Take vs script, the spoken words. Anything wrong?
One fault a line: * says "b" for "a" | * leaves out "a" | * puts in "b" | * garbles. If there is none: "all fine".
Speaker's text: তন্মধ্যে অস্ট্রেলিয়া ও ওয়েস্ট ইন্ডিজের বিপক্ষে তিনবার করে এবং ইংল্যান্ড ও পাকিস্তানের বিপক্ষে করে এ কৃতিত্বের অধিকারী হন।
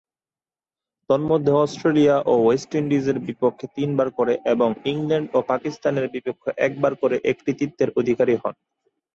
* puts in "একবার"